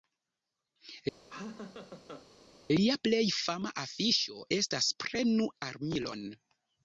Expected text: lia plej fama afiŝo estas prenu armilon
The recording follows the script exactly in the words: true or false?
true